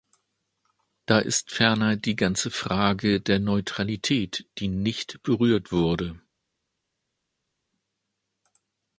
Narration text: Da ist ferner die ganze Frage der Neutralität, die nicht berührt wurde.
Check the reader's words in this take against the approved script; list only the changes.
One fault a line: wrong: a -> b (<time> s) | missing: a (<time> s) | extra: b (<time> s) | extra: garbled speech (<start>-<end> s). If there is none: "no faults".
no faults